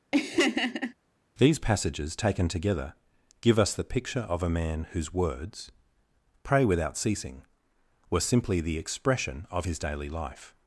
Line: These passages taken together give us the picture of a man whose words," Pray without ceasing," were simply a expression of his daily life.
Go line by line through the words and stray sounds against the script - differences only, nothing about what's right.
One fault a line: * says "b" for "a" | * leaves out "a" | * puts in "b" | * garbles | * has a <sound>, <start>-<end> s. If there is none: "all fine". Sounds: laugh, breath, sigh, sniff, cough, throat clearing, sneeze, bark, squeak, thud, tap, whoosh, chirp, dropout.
* has a laugh, 0.1-0.9 s
* says "the" for "a"